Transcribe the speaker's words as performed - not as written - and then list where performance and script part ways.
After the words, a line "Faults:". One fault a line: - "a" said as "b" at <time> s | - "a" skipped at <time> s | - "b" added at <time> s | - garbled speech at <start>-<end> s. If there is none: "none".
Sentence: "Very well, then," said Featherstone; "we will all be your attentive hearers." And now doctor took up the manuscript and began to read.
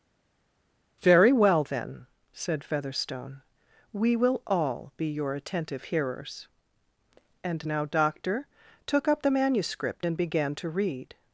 "Very well, then," said Featherstone; "we will all be your attentive hearers." And now doctor took up the manuscript and began to read.
Faults:
none